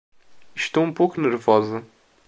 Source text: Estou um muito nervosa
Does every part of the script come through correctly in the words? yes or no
no